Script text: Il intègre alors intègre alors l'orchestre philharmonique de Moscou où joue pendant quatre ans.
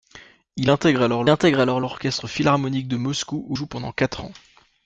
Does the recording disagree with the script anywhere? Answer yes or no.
no